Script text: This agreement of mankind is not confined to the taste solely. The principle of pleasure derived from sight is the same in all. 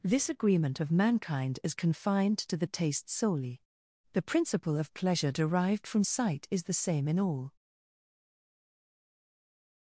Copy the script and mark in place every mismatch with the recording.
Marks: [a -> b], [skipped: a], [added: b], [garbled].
This agreement of mankind is [skipped: not] confined to the taste solely. The principle of pleasure derived from sight is the same in all.